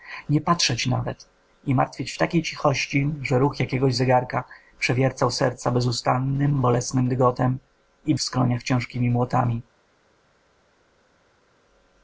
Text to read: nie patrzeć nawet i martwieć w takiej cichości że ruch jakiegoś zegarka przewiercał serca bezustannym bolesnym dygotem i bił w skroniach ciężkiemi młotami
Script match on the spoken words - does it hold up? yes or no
no